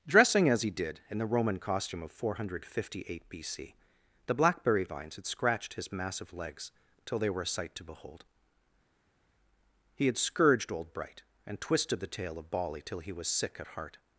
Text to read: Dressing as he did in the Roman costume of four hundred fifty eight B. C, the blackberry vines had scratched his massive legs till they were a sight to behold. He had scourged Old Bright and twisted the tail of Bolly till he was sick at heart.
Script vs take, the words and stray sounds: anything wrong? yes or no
no